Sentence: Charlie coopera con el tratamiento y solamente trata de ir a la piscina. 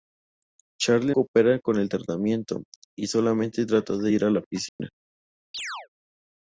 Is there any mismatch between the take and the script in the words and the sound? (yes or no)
yes